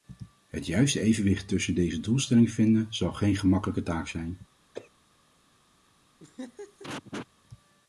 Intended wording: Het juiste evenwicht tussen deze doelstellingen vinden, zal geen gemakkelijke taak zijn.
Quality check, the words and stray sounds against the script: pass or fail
fail